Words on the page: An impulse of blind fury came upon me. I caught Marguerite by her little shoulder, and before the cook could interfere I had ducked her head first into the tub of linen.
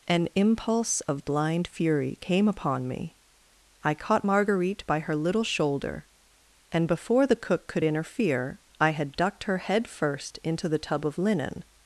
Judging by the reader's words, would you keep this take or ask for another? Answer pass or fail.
pass